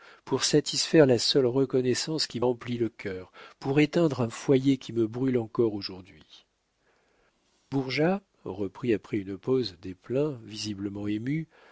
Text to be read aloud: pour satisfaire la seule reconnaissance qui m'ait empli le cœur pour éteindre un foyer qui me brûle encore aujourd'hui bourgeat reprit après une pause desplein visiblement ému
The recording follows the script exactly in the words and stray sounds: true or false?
false